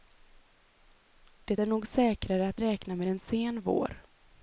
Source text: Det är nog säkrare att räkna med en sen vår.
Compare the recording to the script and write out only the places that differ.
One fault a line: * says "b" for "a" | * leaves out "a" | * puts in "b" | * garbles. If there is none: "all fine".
all fine